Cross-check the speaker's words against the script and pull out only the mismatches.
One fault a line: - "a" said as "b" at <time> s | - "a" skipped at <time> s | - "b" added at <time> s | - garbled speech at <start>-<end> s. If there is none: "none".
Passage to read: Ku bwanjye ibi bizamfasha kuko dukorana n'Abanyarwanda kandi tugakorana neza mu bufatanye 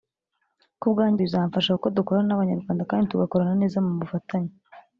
- "ibi" skipped at 1.2 s